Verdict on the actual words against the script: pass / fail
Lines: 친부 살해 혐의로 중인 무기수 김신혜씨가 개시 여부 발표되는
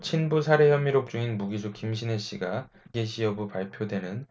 pass